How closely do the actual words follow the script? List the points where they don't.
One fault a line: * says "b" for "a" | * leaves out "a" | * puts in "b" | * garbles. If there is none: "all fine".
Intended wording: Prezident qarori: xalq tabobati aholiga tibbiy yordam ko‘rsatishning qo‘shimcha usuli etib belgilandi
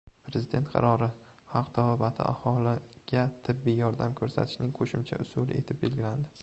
all fine